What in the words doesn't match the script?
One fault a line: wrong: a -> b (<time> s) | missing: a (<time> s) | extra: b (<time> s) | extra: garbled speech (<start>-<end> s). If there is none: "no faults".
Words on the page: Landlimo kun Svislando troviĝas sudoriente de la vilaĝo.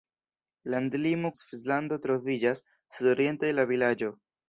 missing: kun (1.3 s)